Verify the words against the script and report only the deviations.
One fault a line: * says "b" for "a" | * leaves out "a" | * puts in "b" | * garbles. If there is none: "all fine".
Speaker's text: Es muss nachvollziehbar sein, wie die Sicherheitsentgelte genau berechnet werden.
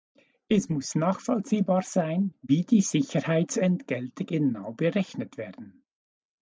all fine